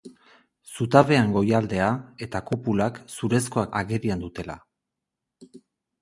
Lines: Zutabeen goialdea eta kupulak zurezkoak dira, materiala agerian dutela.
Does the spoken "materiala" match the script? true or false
false